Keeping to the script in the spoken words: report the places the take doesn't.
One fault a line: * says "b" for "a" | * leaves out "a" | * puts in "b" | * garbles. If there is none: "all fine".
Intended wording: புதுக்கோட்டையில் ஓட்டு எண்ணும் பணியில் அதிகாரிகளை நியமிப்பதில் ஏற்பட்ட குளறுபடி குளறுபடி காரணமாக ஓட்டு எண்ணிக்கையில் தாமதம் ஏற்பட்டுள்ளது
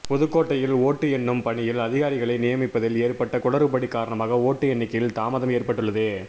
* leaves out "குளறுபடி"